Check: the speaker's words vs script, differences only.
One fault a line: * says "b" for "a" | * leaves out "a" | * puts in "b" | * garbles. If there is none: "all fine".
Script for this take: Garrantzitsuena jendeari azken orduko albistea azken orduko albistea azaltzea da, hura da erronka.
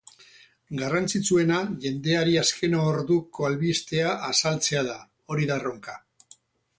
* leaves out "azken orduko albistea"
* says "hori" for "hura"